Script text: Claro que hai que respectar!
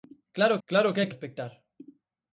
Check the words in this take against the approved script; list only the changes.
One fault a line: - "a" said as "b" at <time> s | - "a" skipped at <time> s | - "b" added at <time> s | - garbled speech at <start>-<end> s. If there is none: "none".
- "claro" added at 0.7 s
- "que" skipped at 1.1 s